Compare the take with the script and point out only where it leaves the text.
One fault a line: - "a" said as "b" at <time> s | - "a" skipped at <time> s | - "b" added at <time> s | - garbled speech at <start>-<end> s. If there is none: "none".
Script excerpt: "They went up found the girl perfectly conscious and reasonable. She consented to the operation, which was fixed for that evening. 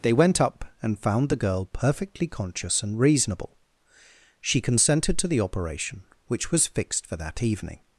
- "and" added at 0.8 s